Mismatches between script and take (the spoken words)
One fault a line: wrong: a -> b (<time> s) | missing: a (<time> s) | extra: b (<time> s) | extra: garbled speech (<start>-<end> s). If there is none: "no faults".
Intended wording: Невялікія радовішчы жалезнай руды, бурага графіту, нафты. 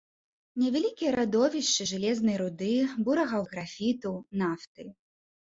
no faults